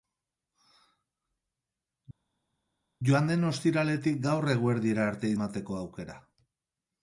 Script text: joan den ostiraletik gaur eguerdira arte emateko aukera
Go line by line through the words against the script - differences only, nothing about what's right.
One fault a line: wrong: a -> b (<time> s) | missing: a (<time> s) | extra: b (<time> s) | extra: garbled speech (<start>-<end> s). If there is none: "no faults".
no faults